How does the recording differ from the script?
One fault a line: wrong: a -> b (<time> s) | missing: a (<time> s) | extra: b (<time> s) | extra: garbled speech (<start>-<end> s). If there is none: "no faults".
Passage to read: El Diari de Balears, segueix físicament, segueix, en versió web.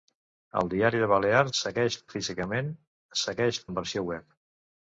no faults